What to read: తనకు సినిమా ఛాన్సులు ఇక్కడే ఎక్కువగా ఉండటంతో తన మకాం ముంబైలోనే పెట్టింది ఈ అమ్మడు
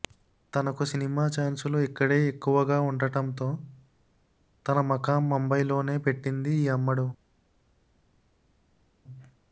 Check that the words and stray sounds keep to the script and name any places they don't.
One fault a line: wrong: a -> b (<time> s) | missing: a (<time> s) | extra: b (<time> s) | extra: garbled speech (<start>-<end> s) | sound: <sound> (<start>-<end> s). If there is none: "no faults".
no faults